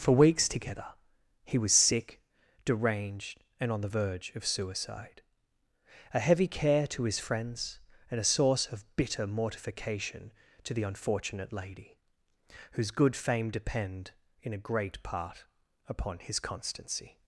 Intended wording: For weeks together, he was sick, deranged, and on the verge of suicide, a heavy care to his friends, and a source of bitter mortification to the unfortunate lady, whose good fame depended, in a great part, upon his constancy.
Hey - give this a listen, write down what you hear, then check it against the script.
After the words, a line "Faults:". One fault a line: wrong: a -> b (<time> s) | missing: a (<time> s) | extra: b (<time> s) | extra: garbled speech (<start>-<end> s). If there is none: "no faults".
For weeks together, he was sick, deranged, and on the verge of suicide, a heavy care to his friends, and a source of bitter mortification to the unfortunate lady, whose good fame depend, in a great part, upon his constancy.
Faults:
wrong: depended -> depend (13.5 s)